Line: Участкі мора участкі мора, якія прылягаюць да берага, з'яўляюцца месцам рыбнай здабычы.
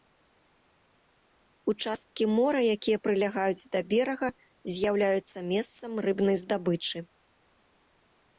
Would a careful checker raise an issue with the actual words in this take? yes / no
yes